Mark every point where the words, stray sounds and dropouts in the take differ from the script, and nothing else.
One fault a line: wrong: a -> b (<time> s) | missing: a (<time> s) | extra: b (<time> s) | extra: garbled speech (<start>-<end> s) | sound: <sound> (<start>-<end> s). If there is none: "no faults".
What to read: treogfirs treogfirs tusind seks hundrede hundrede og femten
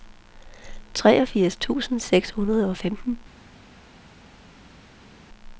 missing: treogfirs (1.6 s)
missing: hundrede (2.7 s)